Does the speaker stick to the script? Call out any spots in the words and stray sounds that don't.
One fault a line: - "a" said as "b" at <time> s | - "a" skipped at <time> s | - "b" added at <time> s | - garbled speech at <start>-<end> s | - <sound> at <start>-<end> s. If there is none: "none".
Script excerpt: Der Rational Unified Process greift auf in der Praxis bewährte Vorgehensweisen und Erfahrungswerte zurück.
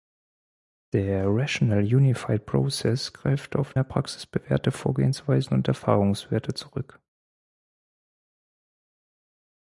- "in" skipped at 3.8 s